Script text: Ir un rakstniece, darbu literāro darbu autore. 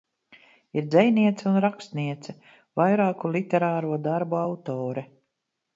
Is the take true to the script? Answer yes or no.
no